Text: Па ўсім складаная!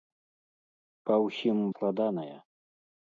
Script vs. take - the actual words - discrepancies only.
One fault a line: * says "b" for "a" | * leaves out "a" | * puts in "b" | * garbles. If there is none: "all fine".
all fine